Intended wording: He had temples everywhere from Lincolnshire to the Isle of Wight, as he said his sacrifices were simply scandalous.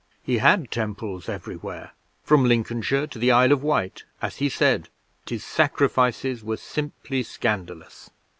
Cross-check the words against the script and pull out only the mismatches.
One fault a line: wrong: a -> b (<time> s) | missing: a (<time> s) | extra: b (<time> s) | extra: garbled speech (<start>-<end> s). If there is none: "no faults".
no faults